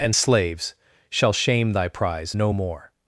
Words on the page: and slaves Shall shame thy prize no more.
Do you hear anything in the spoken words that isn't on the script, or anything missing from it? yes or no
no